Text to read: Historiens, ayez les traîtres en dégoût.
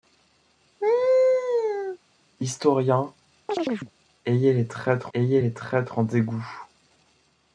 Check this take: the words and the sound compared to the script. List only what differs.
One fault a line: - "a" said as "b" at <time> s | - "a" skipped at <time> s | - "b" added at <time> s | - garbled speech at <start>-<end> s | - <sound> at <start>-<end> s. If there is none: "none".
- laugh at 0.8-2.0 s
- chirp at 3.5-3.9 s
- "ayez les traîtres" added at 5.1 s